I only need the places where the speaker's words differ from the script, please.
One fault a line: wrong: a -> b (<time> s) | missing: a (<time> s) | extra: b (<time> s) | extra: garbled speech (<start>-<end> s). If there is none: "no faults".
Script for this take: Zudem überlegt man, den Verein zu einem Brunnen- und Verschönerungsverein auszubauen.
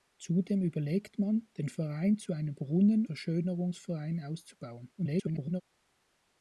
missing: und (3.1 s)
extra: garbled speech (5.0-5.6 s)